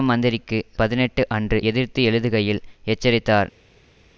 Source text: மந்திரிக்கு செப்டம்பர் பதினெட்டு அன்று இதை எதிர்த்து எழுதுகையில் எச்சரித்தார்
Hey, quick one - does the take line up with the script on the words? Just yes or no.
no